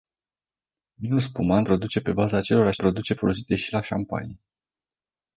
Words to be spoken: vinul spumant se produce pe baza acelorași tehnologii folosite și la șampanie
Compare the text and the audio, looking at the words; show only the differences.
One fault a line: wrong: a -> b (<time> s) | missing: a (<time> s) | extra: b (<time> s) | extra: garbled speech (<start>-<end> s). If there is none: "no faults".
missing: se (1.7 s)
wrong: tehnologii -> produce (2.8 s)